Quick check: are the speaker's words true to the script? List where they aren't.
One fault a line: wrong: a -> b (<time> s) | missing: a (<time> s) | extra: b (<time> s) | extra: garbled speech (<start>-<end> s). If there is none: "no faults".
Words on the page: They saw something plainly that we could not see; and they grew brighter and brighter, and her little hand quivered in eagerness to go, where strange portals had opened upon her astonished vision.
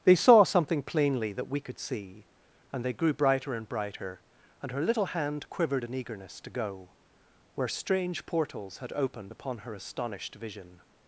missing: not (1.8 s)